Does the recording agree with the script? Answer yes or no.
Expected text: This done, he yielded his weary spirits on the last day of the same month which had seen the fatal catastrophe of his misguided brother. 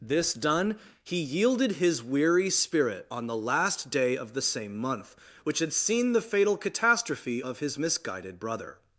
no